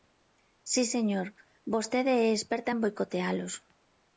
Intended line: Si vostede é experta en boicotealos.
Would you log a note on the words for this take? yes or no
yes